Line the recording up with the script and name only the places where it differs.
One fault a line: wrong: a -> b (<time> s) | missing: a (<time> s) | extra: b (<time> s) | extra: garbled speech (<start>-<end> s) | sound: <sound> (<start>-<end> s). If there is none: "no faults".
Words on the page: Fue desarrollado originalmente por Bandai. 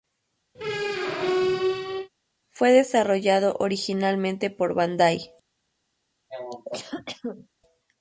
sound: squeak (0.5-2.1 s)
sound: cough (6.3-7.5 s)